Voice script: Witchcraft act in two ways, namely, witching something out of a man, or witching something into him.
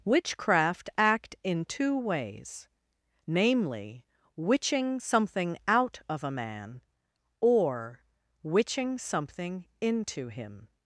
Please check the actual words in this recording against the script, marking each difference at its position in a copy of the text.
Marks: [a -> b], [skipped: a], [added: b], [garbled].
Witchcraft act in two ways, namely, witching something out of a man, or witching something into him.